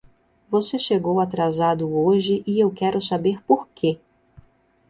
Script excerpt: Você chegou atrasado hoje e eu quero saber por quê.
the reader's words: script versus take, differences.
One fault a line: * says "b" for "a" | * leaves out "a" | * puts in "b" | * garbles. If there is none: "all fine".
all fine